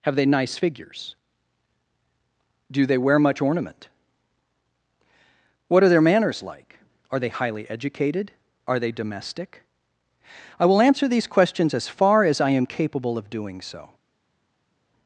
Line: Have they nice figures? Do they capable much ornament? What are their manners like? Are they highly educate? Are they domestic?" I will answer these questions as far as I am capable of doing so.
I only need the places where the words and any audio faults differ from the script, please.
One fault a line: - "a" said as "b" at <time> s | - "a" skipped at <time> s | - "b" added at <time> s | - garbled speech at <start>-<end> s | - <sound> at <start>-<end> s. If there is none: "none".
- "capable" said as "wear" at 3.0 s
- "educate" said as "educated" at 7.7 s